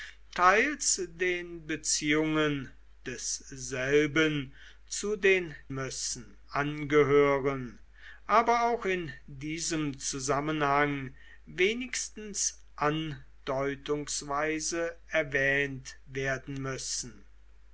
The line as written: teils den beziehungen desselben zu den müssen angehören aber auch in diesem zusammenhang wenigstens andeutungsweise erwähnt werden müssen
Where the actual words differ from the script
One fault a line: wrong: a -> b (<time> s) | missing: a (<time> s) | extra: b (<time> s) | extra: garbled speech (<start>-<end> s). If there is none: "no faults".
no faults